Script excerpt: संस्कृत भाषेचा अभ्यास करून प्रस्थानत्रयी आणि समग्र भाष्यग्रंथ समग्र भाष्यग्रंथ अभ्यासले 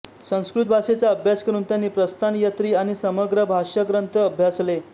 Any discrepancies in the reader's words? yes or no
yes